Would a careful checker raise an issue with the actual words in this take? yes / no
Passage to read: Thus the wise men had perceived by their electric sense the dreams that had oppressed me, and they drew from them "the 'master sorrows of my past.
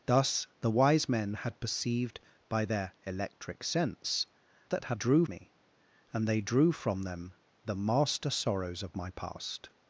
yes